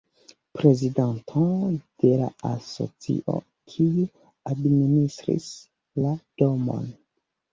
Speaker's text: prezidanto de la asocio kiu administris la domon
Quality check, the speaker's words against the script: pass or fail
pass